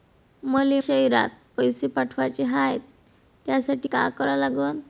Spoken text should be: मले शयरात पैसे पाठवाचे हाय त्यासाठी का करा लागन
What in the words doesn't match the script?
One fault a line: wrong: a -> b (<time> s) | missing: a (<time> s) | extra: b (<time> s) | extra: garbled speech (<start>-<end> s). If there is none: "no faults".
no faults